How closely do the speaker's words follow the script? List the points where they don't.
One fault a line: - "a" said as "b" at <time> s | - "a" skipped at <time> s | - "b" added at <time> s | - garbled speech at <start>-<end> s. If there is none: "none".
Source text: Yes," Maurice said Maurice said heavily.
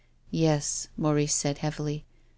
- "Maurice said" skipped at 1.6 s